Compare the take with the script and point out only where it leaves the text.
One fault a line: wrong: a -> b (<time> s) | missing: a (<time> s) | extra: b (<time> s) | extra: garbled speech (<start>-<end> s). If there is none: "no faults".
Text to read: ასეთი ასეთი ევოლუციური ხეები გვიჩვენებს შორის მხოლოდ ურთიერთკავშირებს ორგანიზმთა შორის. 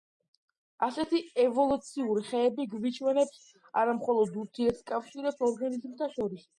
missing: ასეთი (1.2 s)
wrong: შორის -> არა (3.9 s)